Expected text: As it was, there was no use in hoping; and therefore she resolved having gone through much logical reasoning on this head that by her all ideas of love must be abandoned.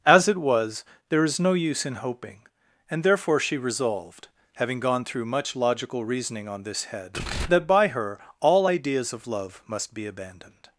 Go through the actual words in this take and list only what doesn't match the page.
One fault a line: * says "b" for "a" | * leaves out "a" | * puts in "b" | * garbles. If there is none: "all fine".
* says "is" for "was"